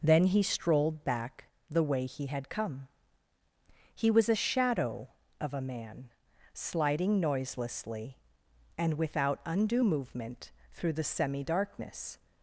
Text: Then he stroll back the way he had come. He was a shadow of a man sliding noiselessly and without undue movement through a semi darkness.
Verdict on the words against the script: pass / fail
fail